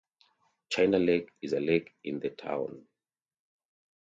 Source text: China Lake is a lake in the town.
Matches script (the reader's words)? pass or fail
pass